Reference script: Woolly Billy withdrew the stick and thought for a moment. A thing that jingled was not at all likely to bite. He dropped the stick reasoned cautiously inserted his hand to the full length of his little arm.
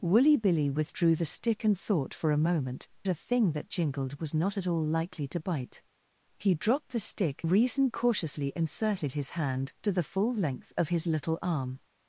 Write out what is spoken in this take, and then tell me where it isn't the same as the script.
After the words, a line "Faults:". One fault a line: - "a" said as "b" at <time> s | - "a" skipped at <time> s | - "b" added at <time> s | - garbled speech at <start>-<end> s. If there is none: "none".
Woolly Billy withdrew the stick and thought for a moment. A thing that jingled was not at all likely to bite. He dropped the stick reasoned cautiously inserted his hand to the full length of his little arm.
Faults:
none